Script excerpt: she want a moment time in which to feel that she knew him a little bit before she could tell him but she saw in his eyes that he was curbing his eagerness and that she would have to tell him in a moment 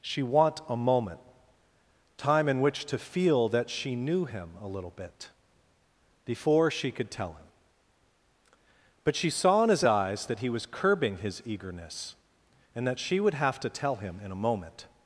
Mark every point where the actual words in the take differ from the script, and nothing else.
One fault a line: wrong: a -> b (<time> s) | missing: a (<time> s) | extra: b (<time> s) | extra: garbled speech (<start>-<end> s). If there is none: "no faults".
no faults